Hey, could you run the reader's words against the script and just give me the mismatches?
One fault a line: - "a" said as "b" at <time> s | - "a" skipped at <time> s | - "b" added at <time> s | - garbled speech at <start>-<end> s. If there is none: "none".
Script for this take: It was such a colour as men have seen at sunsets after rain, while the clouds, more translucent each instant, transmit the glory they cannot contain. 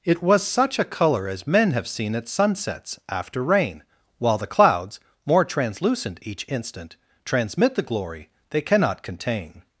none